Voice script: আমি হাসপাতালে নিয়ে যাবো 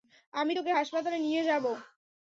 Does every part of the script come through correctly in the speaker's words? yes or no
no